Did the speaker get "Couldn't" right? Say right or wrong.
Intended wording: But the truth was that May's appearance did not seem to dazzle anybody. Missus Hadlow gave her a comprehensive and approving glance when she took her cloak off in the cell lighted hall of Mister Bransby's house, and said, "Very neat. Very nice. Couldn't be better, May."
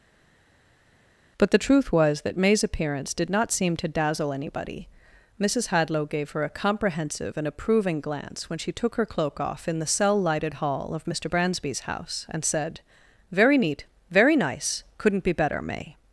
right